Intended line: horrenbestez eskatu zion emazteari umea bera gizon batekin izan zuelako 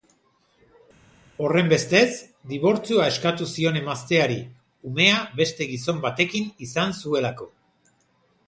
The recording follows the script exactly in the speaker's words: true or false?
false